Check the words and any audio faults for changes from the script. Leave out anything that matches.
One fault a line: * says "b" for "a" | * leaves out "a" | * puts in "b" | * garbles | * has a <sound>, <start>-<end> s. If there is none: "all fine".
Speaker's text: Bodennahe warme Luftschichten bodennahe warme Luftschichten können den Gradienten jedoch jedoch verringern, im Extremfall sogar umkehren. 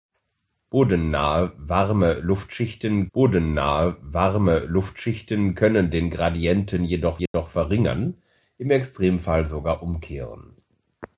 * has a dropout, 7.3-7.3 s